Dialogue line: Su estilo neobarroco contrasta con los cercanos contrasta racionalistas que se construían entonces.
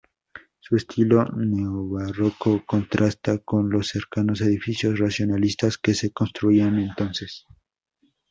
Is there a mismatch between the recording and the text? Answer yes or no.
yes